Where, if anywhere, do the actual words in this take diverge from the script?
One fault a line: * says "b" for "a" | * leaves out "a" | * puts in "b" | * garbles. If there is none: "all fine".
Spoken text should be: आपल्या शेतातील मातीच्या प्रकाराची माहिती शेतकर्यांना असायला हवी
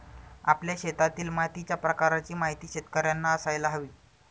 all fine